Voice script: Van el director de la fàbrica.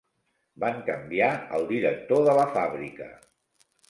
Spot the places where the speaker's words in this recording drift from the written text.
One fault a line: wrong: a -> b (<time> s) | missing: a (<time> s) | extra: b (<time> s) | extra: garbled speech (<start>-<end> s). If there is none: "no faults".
extra: canviar (0.9 s)